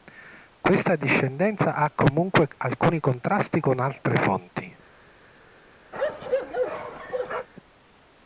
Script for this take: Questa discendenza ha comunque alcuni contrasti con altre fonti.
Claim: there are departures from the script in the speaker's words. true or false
false